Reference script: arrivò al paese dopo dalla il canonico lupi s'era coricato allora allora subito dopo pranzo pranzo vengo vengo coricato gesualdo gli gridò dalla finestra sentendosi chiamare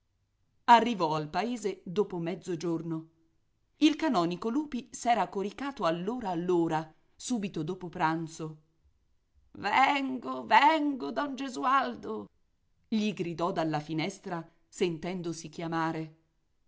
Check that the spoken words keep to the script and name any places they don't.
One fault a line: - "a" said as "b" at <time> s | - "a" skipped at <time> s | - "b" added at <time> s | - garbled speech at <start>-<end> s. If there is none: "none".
- "dalla" said as "mezzogiorno" at 2.2 s
- "pranzo" skipped at 8.6 s
- "coricato" said as "don" at 11.1 s